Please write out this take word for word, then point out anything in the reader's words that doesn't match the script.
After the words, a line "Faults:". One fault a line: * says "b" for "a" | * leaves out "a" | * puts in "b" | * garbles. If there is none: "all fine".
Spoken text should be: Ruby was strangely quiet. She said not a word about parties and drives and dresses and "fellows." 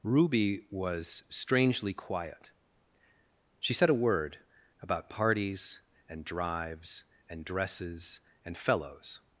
Ruby was strangely quiet. She said a word about parties and drives and dresses and "fellows."
Faults:
* leaves out "not"